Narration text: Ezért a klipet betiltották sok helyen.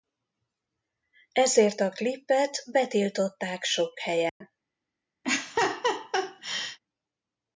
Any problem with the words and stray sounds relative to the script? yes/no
yes